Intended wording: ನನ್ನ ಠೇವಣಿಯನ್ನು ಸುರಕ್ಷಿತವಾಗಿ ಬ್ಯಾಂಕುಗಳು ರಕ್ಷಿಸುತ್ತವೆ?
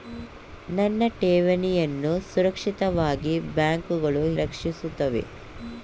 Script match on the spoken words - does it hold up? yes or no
yes